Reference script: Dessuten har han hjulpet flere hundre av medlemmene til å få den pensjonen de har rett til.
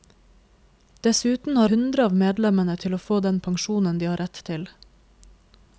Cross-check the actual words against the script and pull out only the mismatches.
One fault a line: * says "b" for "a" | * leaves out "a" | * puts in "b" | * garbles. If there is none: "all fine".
* leaves out "han hjulpet flere"